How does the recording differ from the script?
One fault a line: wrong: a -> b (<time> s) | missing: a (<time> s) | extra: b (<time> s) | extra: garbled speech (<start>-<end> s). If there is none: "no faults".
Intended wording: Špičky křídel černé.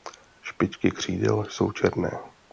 extra: jsou (1.5 s)